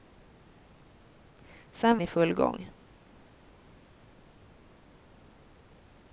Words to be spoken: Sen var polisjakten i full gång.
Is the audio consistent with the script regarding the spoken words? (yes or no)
no